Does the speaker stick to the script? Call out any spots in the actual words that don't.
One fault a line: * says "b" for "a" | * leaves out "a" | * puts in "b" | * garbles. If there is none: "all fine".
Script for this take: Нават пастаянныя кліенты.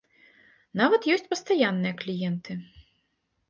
* puts in "ёсць"